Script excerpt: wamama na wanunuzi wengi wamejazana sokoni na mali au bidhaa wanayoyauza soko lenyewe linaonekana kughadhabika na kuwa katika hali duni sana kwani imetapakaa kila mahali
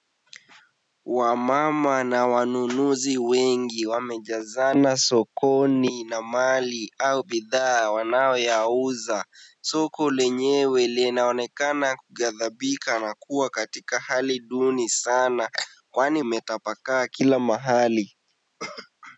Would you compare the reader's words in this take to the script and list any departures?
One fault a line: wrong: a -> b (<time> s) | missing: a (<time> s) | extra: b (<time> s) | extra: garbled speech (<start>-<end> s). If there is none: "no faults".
no faults